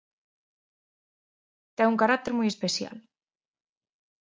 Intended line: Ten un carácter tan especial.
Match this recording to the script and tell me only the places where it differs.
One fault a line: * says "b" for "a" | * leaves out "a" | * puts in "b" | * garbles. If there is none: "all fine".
* says "moi" for "tan"